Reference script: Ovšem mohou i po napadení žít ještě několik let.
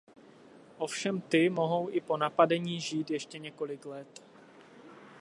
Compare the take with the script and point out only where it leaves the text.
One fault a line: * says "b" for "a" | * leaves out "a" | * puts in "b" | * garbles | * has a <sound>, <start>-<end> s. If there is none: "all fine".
* puts in "ty"